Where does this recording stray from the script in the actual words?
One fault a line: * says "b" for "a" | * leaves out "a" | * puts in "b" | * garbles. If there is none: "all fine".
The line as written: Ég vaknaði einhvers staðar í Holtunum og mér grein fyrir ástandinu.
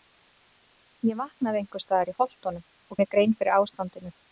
all fine